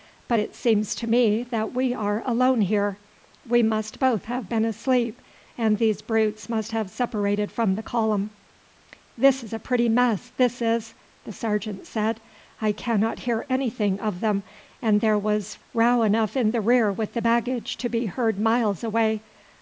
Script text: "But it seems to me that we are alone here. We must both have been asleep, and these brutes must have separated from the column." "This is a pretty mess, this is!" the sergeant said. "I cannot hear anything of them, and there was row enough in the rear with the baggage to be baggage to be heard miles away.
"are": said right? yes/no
yes